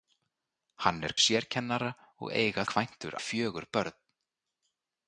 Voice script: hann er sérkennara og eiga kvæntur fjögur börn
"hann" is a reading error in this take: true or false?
false